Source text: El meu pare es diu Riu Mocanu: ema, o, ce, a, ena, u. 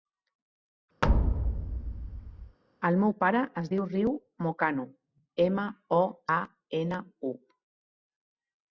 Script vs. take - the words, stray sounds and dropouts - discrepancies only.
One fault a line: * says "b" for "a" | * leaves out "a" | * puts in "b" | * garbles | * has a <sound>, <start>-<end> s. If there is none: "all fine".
* has a thud, 1.0-2.6 s
* leaves out "ce"